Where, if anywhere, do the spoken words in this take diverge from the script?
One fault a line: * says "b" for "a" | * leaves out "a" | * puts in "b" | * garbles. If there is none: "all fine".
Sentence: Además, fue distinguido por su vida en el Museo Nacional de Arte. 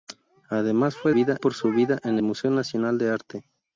* says "vida" for "distinguido"
* leaves out "el"